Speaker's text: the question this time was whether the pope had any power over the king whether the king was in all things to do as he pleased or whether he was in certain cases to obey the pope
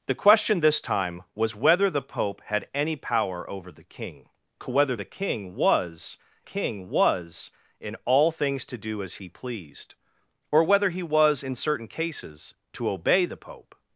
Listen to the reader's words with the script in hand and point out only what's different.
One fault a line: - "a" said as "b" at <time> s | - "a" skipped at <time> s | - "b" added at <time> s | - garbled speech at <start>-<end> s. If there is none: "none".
- "king was" added at 6.4 s